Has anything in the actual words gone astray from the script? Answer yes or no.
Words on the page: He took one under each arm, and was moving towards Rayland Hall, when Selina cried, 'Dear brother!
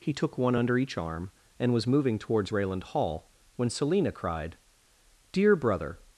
no